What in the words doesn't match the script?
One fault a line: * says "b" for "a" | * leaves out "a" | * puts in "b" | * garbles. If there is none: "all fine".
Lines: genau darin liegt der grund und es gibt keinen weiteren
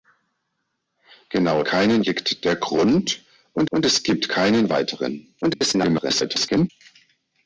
* says "keinen" for "darin"
* puts in "und"
* garbles